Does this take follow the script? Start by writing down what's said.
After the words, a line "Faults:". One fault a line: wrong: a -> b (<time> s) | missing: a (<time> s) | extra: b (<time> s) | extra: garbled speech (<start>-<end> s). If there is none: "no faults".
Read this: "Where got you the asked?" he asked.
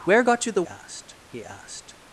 "Where got you the asked?" he asked.
Faults:
no faults